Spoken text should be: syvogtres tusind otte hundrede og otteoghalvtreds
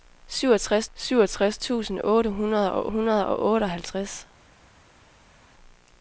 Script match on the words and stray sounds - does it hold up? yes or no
no